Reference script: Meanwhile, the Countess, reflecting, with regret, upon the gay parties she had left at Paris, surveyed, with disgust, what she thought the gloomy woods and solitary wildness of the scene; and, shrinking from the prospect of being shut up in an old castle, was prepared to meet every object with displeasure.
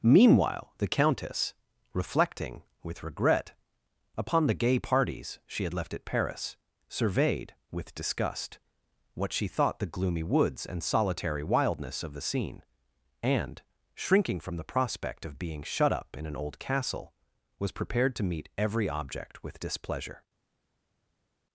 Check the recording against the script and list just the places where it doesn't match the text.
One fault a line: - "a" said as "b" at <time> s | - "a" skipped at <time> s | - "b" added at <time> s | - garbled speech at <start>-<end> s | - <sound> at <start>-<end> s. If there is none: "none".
none